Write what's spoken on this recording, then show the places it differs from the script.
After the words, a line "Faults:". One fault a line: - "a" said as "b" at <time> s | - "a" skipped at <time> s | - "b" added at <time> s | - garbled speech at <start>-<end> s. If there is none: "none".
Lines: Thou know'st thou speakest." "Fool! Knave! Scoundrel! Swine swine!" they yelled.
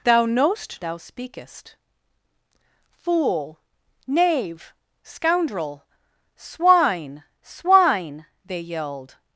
Thou know'st thou speakest." "Fool! Knave! Scoundrel! Swine swine!" they yelled.
Faults:
none